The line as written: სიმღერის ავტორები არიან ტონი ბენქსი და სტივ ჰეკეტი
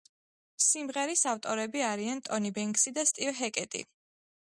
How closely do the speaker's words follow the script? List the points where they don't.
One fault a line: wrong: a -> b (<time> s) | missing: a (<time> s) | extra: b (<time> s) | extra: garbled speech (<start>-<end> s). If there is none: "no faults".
no faults